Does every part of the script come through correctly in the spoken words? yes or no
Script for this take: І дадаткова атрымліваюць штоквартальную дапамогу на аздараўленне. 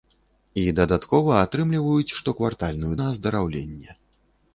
no